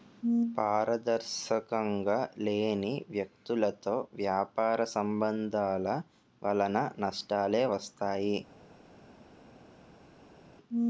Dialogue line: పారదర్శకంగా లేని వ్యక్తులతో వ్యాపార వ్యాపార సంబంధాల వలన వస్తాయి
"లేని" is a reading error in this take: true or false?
false